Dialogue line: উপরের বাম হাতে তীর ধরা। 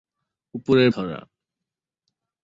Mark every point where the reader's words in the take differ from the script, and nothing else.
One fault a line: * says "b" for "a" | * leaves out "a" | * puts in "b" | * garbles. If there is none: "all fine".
* leaves out "বাম হাতে তীর"